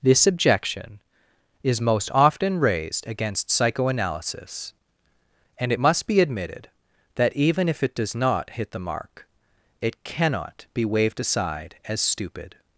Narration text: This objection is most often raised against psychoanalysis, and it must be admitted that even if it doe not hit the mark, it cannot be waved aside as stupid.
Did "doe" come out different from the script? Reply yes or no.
yes